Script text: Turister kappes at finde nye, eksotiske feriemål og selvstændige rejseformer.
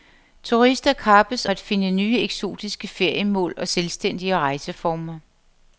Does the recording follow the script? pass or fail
pass